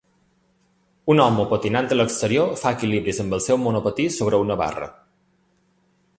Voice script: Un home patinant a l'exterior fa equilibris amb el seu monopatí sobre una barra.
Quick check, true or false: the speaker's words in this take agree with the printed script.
true